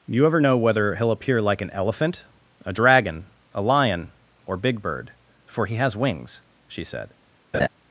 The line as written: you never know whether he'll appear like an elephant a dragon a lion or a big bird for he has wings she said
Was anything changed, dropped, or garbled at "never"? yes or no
yes